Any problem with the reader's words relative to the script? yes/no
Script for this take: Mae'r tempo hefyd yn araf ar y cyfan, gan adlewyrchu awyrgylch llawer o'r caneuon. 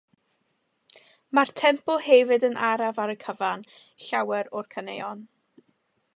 yes